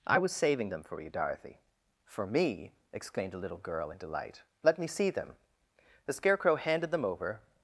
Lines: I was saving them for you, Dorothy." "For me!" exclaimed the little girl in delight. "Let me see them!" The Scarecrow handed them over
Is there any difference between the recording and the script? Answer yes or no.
no